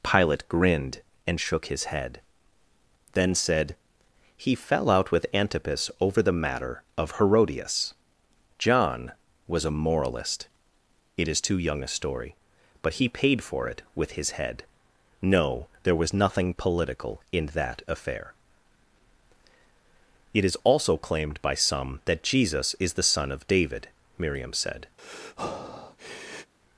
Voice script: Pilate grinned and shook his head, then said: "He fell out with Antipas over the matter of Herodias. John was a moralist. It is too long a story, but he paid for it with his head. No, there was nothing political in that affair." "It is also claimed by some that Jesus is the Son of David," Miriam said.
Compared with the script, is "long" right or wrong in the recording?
wrong